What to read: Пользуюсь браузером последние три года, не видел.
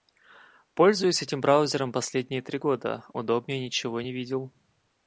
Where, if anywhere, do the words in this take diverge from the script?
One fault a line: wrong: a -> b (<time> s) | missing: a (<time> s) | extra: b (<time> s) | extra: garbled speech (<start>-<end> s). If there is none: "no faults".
extra: этим (1.2 s)
extra: удобнее ничего (3.1 s)